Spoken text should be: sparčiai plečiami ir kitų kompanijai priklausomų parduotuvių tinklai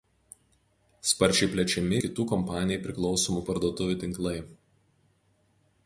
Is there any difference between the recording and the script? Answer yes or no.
yes